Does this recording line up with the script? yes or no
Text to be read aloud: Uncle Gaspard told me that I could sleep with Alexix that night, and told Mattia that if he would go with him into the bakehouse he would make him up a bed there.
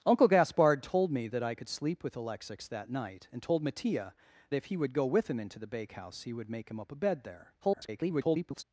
no